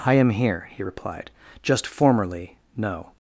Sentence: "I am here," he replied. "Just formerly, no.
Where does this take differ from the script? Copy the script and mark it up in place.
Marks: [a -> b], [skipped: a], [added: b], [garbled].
"I am here," he replied. "Just formerly, no.